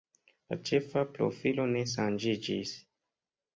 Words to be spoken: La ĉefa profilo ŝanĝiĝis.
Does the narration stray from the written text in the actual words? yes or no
yes